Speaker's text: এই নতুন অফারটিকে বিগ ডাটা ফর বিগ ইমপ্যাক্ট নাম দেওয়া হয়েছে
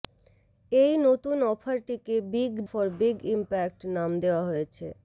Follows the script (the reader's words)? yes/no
no